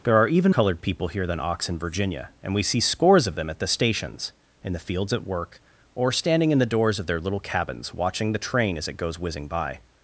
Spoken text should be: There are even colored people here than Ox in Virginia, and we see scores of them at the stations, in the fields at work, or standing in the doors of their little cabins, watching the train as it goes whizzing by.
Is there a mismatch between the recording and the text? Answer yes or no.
no